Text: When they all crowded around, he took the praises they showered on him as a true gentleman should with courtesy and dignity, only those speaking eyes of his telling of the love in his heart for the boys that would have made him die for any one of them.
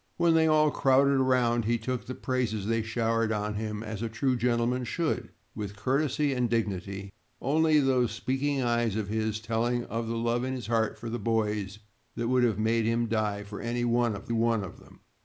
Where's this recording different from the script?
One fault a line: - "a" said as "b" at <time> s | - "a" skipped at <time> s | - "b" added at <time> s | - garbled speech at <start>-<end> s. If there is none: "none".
- "one of" added at 14.3 s